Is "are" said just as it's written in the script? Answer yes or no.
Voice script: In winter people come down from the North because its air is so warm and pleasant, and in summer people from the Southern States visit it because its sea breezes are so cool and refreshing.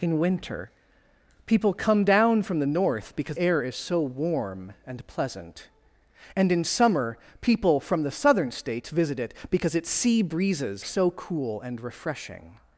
no